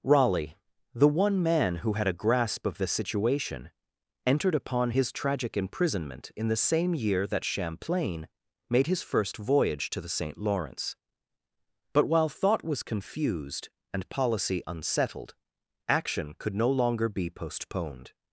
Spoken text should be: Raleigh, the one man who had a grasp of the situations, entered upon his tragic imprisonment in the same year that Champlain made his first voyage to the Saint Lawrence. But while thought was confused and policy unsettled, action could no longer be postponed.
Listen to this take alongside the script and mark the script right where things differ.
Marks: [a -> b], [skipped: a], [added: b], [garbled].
Raleigh, the one man who had a grasp of the [situations, -> situation] entered upon his tragic imprisonment in the same year that Champlain made his first voyage to the Saint Lawrence. But while thought was confused and policy unsettled, action could no longer be postponed.